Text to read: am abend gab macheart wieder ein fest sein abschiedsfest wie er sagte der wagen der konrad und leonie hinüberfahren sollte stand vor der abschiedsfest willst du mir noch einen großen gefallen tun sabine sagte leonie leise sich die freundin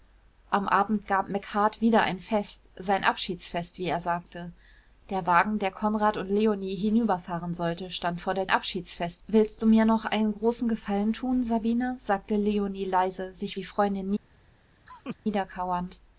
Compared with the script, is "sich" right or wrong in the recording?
right